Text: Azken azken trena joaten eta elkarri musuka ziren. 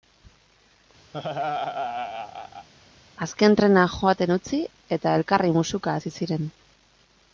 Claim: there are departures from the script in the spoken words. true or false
true